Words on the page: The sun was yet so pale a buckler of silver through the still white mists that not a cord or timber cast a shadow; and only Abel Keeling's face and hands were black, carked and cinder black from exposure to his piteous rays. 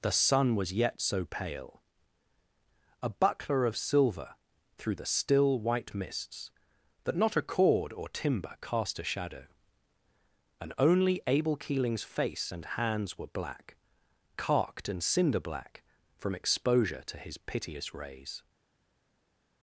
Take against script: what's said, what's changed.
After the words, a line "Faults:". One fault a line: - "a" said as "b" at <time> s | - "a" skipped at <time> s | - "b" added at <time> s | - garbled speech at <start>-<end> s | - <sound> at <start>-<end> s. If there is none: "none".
The sun was yet so pale a buckler of silver through the still white mists that not a cord or timber cast a shadow; and only Abel Keeling's face and hands were black, carked and cinder black from exposure to his piteous rays.
Faults:
none